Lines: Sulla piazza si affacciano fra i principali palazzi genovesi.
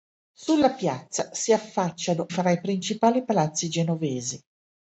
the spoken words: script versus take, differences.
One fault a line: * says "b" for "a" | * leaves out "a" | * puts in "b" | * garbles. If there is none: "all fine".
all fine